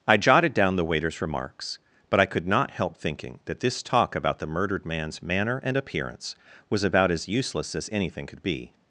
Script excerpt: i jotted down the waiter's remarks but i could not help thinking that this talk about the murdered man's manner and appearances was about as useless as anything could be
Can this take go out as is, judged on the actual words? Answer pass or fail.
fail